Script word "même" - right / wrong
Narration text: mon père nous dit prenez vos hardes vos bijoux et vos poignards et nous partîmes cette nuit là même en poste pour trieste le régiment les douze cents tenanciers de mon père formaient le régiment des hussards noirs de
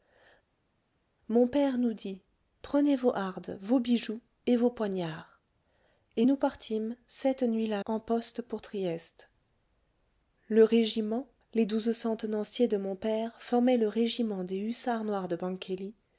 wrong